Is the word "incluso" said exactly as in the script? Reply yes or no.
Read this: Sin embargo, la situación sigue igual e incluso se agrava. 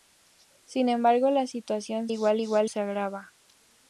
no